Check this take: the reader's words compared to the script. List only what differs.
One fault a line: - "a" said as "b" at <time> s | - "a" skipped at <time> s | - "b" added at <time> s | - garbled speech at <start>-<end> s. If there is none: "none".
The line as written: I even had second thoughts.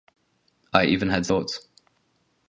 - "second" skipped at 1.3 s